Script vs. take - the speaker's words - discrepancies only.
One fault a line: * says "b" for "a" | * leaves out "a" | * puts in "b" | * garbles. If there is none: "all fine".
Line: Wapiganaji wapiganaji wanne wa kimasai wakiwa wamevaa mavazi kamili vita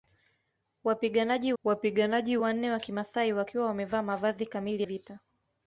all fine